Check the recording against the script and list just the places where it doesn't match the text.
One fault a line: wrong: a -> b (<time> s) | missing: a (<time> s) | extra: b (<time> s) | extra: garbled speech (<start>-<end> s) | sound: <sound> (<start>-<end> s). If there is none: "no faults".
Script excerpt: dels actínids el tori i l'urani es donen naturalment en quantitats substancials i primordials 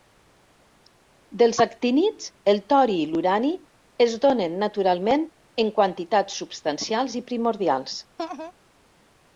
sound: laugh (8.2-8.5 s)